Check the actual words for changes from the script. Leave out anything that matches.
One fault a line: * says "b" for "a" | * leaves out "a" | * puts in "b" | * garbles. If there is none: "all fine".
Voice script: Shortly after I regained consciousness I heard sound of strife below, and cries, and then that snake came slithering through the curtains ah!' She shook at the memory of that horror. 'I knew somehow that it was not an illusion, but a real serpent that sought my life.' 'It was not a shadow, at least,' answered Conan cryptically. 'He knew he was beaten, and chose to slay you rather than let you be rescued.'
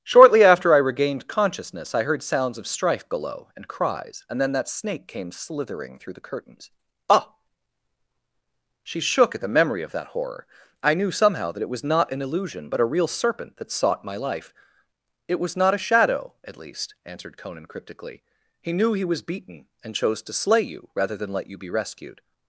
* says "sounds" for "sound"